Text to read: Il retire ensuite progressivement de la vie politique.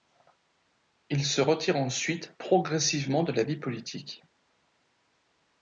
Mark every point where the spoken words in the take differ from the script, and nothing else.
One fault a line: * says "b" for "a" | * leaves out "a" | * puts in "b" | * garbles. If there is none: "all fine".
* puts in "se"